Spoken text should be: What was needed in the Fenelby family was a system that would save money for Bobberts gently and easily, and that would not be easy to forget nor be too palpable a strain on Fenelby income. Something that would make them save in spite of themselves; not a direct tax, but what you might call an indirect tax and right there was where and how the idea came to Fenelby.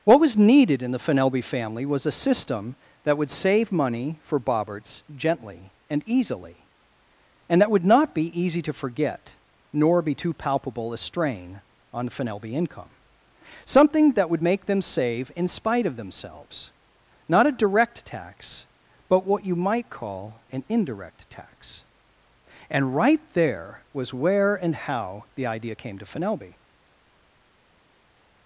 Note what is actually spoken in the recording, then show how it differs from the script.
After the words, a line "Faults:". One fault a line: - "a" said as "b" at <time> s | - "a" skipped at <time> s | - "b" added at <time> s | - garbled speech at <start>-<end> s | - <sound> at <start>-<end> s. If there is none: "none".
What was needed in the Fenelby family was a system that would save money for Bobberts gently and easily, and that would not be easy to forget nor be too palpable a strain on Fenelby income. Something that would make them save in spite of themselves; not a direct tax, but what you might call an indirect tax and right there was where and how the idea came to Fenelby.
Faults:
none